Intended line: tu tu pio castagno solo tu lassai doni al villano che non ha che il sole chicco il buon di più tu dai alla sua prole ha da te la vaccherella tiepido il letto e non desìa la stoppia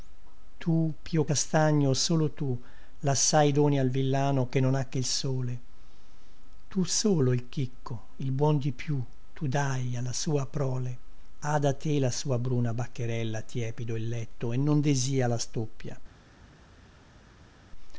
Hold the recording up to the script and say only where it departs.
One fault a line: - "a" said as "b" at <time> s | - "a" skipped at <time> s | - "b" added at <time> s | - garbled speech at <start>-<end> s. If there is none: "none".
- "tu" skipped at 0.9 s
- "tu solo il" added at 6.7 s
- "sua bruna" added at 12.1 s